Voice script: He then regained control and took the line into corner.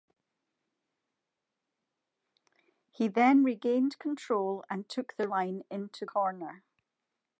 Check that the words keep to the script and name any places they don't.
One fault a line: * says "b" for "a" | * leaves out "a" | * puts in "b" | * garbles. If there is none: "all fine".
all fine